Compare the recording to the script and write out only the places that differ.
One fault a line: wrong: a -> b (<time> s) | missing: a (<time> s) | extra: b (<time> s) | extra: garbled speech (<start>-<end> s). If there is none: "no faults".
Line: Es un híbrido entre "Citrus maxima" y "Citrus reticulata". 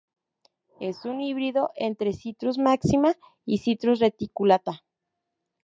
no faults